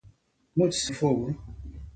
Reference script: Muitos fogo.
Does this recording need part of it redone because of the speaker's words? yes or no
no